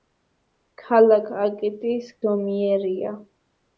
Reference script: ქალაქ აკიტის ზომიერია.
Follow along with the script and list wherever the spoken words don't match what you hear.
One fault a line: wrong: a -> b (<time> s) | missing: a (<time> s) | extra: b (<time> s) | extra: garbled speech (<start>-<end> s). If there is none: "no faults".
no faults